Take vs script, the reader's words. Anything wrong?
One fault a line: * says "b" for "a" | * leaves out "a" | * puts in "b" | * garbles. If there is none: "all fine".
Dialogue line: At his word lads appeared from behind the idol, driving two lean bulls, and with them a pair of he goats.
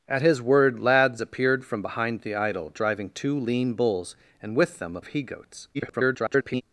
* leaves out "pair"
* garbles